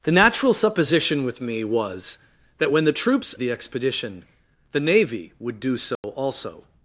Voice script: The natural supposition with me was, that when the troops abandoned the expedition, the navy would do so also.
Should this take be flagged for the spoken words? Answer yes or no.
yes